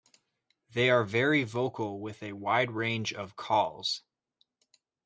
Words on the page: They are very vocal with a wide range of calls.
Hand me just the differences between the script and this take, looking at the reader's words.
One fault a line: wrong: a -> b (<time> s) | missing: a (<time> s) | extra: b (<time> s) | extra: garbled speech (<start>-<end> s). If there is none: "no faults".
no faults